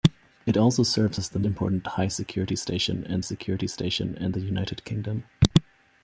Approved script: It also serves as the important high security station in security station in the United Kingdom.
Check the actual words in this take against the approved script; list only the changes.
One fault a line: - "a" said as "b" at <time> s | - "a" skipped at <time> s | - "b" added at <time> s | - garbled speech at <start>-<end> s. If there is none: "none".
none